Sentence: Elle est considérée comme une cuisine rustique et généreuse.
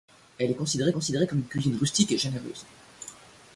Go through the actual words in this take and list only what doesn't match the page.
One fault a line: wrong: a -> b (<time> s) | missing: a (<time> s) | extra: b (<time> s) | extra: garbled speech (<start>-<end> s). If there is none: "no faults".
extra: considérée (0.9 s)